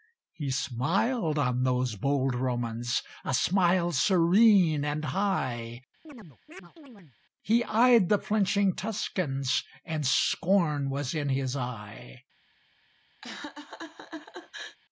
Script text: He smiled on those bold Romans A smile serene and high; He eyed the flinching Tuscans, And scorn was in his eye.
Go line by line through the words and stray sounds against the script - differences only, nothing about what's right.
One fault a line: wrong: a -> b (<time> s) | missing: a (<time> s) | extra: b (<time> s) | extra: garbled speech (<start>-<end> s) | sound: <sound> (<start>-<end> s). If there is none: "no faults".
sound: chirp (6.0-7.2 s)
sound: laugh (13.2-14.8 s)